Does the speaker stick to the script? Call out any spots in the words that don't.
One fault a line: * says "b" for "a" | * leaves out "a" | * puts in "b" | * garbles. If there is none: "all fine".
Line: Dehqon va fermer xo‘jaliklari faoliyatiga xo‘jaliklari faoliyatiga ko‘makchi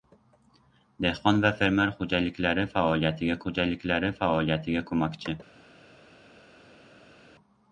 all fine